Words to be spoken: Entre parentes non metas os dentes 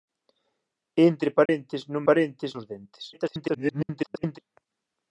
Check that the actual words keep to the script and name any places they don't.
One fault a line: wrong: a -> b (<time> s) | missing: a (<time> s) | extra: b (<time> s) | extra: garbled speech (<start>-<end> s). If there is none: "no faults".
wrong: metas -> parentes (2.1 s)
extra: garbled speech (3.1-4.4 s)